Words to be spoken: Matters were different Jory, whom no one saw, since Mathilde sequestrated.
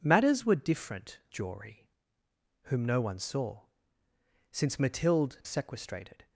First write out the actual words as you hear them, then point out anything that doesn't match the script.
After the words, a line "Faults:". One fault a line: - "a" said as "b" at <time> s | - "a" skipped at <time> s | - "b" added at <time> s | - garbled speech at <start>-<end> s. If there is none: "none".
Matters were different Jory, whom no one saw, since Mathilde sequestrated.
Faults:
none